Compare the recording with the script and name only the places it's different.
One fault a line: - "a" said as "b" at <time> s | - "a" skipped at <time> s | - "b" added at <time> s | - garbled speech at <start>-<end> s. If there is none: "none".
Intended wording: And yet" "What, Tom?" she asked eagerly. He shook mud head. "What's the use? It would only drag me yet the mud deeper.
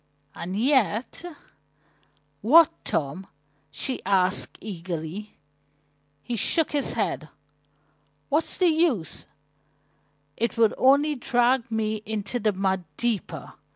- "mud" said as "his" at 6.7 s
- "yet" said as "into" at 12.0 s